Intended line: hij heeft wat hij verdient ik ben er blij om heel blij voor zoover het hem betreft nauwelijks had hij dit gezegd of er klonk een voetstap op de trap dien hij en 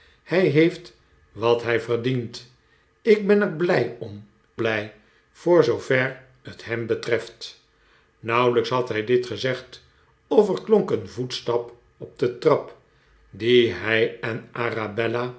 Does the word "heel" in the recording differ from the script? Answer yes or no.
yes